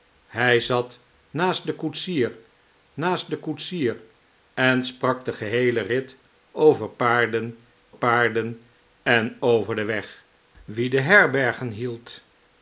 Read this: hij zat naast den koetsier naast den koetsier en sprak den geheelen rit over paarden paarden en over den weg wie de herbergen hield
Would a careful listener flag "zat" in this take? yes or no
no